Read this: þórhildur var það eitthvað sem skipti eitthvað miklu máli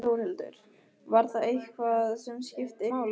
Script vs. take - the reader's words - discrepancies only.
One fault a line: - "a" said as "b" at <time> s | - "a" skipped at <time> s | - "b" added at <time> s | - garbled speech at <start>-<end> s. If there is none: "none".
- "eitthvað miklu" skipped at 2.9 s